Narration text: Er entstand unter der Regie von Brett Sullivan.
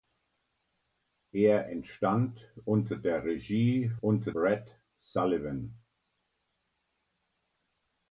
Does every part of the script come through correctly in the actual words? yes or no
no